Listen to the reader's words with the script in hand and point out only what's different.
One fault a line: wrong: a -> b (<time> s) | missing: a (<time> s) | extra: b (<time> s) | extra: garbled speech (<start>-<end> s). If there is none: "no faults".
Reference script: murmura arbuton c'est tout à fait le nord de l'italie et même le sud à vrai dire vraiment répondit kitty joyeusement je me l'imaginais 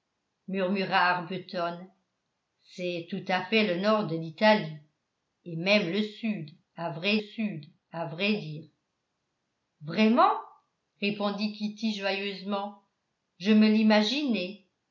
extra: sud à vrai (7.2 s)